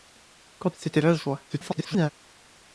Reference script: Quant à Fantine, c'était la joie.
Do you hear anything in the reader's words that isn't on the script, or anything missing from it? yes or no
yes